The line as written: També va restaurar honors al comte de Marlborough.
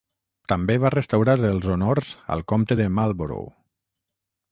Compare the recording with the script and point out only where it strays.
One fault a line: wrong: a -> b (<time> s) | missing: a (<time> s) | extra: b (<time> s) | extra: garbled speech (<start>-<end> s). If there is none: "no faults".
extra: els (1.5 s)